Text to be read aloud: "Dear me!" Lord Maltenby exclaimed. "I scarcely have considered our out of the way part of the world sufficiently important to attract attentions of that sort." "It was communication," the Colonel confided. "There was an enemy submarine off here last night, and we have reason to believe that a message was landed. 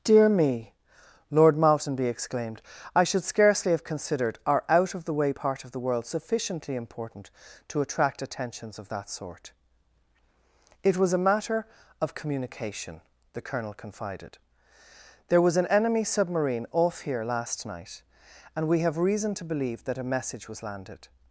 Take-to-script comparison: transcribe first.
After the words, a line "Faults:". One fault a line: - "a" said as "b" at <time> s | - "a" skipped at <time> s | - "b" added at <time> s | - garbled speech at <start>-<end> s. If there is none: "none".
"Dear me!" Lord Maltenby exclaimed. "I should scarcely have considered our out of the way part of the world sufficiently important to attract attentions of that sort." "It was a matter of communication," the Colonel confided. "There was an enemy submarine off here last night, and we have reason to believe that a message was landed.
Faults:
- "should" added at 3.0 s
- "a matter of" added at 11.1 s